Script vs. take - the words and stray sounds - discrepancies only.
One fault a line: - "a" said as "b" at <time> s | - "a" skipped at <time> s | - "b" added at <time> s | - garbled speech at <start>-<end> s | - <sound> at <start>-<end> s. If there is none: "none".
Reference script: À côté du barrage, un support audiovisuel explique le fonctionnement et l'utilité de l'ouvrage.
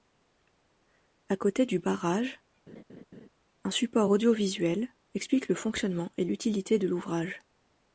- laugh at 2.7-3.3 s